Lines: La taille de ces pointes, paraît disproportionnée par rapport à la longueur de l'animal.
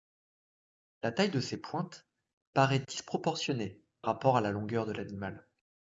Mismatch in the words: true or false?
true